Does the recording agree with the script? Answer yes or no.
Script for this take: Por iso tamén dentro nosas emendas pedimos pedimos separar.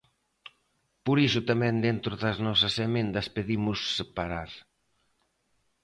no